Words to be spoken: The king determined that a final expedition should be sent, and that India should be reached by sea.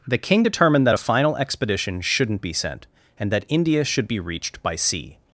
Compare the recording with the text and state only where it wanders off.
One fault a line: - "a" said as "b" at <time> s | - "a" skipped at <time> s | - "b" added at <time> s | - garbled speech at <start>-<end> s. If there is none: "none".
- "should" said as "shouldn't" at 2.0 s